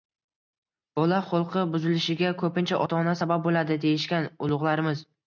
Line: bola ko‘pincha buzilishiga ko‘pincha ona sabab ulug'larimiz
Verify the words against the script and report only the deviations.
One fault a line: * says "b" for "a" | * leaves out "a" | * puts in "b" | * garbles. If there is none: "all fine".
* says "xulqi" for "ko‘pincha"
* puts in "ota"
* puts in "bo‘ladi deyishgan"